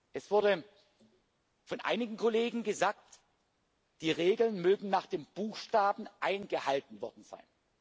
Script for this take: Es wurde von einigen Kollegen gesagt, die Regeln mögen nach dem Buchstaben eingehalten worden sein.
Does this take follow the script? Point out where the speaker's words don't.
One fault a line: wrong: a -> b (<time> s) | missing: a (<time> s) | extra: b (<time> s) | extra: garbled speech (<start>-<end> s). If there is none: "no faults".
no faults